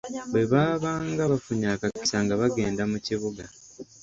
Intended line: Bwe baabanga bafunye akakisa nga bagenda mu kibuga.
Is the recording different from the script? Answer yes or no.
no